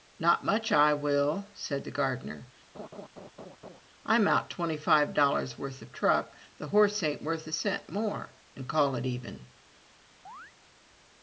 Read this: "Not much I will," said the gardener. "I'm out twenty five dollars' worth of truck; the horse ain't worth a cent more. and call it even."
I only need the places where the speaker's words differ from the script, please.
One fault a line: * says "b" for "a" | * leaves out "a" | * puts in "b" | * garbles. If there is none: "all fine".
all fine